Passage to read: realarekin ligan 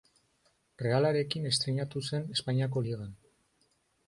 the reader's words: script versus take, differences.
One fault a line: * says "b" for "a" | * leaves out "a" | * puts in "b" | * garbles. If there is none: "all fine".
* puts in "estreinatu zen espainiako"